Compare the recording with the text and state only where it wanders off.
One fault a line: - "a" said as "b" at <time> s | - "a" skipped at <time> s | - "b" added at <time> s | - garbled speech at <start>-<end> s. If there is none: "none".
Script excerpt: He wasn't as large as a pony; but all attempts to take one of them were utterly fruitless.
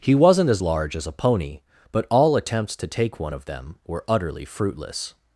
none